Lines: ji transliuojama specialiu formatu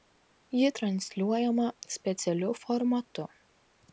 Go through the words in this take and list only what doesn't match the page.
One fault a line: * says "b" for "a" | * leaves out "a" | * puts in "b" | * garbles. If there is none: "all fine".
all fine